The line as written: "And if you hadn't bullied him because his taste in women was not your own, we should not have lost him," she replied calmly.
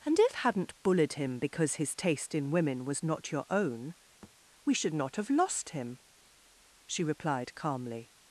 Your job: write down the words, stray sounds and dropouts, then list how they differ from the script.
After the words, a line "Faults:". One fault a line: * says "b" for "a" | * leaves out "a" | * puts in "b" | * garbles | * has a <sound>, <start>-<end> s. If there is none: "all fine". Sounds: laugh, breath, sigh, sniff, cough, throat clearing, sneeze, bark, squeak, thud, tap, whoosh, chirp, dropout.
"And if hadn't bullied him because his taste in women was not your own, we should not have lost him," she replied calmly.
Faults:
* leaves out "you"
* has a thud, 4.2-4.3 s